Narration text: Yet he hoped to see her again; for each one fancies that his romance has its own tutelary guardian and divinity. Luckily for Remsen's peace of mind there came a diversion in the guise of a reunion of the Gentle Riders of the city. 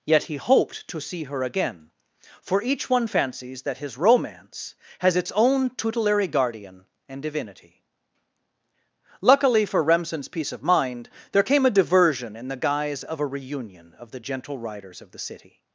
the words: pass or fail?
pass